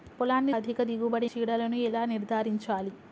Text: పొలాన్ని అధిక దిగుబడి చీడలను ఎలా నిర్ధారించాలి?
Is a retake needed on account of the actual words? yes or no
no